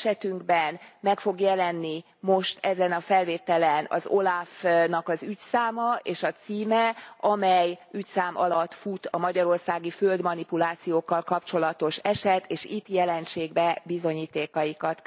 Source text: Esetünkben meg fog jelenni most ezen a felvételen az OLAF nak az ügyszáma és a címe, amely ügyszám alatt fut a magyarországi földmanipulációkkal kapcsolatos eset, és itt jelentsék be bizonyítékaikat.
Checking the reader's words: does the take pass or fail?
pass